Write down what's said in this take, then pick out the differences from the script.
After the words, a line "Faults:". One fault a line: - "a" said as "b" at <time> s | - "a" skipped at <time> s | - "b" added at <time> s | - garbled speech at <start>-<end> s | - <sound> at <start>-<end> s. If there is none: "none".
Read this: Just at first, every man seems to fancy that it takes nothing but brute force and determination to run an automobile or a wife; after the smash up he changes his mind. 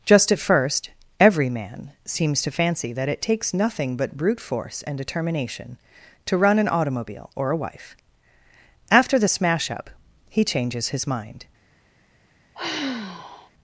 Just at first, every man seems to fancy that it takes nothing but brute force and determination to run an automobile or a wife; after the smash up he changes his mind.
Faults:
- sigh at 12.5-13.5 s